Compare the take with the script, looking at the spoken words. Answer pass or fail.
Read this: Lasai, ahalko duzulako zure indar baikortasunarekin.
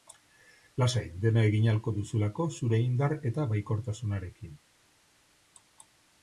fail